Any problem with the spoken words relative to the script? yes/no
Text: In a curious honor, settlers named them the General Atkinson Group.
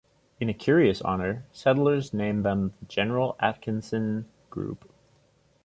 no